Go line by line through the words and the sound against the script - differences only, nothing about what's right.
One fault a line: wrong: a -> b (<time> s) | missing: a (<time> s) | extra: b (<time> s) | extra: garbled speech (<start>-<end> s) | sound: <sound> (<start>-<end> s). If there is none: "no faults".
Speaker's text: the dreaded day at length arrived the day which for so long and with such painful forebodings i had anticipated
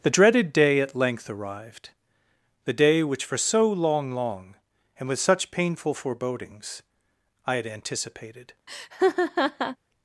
extra: long (4.1 s)
sound: laugh (8.7-9.8 s)